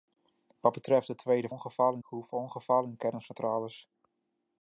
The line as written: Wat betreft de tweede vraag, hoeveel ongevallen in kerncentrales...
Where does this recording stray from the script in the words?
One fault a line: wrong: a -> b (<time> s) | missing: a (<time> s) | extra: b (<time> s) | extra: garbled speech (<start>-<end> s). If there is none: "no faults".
wrong: vraag -> ongevallen (1.5 s)